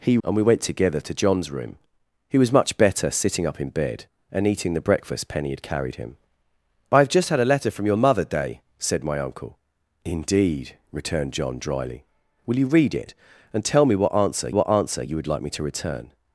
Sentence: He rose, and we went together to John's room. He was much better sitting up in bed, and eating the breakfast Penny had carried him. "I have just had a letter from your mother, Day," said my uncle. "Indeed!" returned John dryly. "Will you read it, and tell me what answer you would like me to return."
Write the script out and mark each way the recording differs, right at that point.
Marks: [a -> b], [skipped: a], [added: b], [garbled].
He [skipped: rose,] and we went together to John's room. He was much better sitting up in bed, and eating the breakfast Penny had carried him. "I have just had a letter from your mother, Day," said my uncle. "Indeed!" returned John dryly. "Will you read it, and tell me what answer [added: what answer] you would like me to return."